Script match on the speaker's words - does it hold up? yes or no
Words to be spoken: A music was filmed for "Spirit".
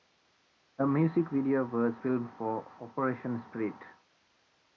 no